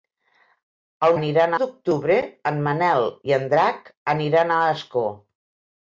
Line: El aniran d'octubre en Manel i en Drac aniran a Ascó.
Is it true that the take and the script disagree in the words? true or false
false